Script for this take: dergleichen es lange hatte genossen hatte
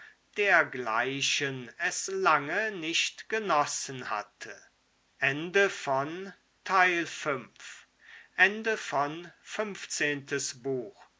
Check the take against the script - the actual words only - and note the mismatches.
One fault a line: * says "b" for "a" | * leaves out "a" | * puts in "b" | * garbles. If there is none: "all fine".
* says "nicht" for "hatte"